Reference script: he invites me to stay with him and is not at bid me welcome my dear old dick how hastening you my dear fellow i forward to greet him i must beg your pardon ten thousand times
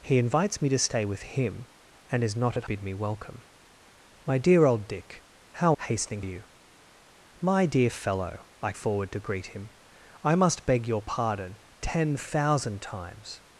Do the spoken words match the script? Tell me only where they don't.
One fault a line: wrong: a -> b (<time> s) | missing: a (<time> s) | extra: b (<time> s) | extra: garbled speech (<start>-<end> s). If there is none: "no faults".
no faults